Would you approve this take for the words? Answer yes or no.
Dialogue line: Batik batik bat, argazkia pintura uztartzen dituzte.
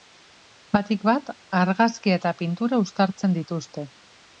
no